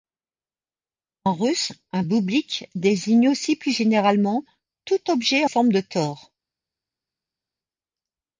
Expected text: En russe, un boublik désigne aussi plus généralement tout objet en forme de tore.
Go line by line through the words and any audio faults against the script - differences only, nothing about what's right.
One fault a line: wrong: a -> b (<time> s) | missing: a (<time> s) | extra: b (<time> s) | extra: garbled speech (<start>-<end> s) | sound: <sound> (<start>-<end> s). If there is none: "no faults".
missing: en (5.5 s)